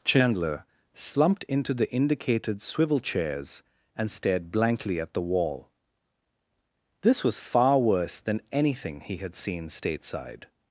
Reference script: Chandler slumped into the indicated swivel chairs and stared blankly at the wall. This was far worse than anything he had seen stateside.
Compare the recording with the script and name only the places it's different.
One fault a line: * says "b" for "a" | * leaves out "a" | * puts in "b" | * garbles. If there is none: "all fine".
all fine